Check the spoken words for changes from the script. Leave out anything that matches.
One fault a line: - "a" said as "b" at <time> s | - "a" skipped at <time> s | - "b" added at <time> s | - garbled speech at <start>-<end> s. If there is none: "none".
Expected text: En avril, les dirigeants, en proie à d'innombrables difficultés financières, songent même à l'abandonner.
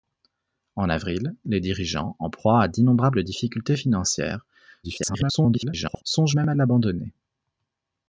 - garbled speech at 4.8-6.0 s